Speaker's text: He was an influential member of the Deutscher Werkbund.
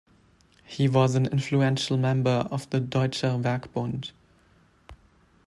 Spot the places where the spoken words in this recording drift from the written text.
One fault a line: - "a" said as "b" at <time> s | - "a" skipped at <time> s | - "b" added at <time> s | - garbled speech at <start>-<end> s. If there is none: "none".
none